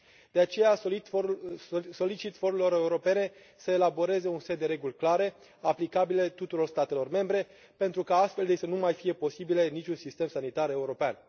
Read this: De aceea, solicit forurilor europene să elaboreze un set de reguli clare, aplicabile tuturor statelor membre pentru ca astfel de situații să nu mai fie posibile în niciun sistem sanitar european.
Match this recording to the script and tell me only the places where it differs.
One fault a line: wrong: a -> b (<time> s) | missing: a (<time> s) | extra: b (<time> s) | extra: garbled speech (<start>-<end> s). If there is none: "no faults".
missing: situații (8.6 s)